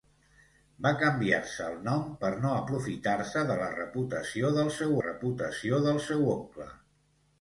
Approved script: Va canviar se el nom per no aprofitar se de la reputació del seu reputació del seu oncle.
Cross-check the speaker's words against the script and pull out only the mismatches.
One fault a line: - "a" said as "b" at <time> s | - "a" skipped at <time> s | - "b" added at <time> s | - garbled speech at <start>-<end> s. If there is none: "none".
none